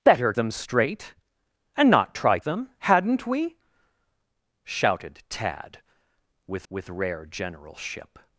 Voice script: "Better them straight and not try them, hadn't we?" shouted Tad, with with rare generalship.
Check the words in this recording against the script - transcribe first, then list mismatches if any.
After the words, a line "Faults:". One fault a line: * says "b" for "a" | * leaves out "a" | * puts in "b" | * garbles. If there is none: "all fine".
"Better them straight and not try them, hadn't we?" shouted Tad, with with rare generalship.
Faults:
all fine